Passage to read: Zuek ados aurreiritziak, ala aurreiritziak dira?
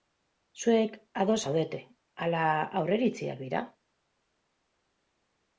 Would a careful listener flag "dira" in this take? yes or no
no